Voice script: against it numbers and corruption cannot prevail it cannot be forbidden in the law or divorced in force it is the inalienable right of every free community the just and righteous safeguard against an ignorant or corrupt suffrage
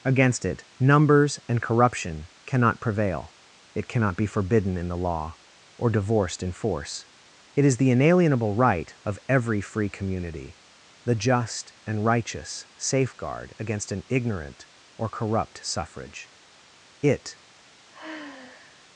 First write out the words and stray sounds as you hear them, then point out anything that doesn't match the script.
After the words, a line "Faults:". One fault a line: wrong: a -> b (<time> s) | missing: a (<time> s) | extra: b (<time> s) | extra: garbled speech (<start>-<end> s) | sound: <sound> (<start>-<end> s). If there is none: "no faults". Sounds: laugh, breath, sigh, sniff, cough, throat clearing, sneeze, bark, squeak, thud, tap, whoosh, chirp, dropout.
against it numbers and corruption cannot prevail it cannot be forbidden in the law or divorced in force it is the inalienable right of every free community the just and righteous safeguard against an ignorant or corrupt suffrage it
Faults:
extra: it (17.0 s)
sound: sigh (17.9-18.9 s)